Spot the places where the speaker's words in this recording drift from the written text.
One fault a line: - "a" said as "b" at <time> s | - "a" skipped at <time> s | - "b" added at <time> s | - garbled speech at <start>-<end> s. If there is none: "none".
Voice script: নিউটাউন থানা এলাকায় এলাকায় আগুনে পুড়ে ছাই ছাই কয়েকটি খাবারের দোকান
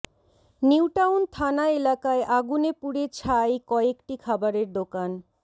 - "এলাকায়" skipped at 2.2 s
- "ছাই" skipped at 3.5 s